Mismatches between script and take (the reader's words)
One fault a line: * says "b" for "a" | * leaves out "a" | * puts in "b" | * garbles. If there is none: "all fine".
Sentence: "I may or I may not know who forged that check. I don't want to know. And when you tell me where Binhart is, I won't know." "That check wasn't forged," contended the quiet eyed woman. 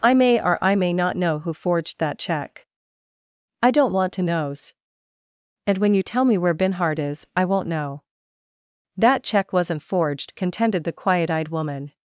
* says "knows" for "know"